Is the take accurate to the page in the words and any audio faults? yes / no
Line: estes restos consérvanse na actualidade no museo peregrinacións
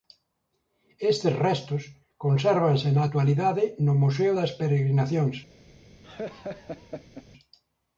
no